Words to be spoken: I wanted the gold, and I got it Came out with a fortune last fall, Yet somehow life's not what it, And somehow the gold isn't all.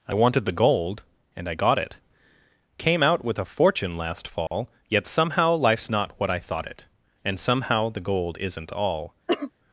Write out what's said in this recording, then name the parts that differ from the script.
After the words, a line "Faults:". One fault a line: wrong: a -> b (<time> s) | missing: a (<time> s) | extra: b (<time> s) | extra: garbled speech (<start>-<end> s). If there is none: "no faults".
I wanted the gold, and I got it Came out with a fortune last fall, Yet somehow life's not what I thought it, And somehow the gold isn't all.
Faults:
extra: I thought (6.3 s)